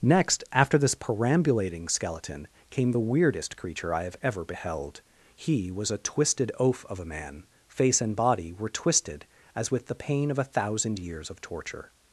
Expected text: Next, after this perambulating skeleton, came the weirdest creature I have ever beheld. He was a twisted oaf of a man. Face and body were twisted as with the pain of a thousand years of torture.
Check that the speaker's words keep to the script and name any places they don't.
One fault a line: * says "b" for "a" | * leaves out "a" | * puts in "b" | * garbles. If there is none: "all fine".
all fine